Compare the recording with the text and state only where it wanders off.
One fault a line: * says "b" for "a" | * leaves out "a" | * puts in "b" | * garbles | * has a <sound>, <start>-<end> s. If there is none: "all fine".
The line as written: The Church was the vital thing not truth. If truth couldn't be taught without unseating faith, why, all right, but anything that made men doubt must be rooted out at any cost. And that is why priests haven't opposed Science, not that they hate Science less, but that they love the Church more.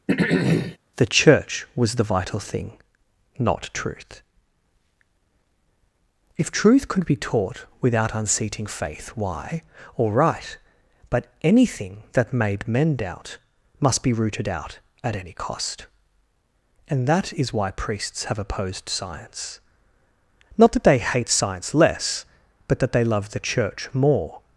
* has a throat clearing, 0.1-0.8 s
* says "could" for "couldn't"
* says "have" for "haven't"